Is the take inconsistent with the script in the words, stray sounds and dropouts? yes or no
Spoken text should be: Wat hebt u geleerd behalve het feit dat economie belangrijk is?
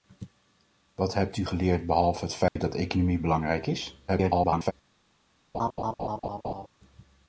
yes